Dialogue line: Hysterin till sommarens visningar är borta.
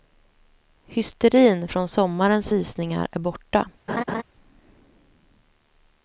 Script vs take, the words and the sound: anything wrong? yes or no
yes